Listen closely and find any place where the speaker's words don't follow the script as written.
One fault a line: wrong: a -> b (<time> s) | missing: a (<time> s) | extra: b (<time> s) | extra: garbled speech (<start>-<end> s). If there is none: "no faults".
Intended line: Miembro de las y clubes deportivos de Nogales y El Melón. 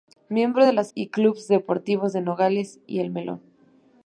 no faults